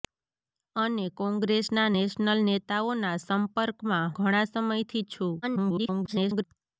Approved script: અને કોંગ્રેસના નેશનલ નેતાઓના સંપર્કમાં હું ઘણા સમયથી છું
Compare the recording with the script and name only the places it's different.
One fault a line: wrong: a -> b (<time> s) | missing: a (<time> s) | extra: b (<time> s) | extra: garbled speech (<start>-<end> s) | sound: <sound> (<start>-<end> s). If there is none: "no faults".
missing: હું (4.1 s)
extra: garbled speech (5.4-6.4 s)